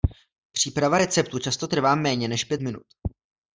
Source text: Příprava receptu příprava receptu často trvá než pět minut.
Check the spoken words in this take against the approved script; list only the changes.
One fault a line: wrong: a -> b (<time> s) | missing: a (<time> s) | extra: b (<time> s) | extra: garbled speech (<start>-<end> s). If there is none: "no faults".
missing: příprava receptu (1.4 s)
extra: méně (1.9 s)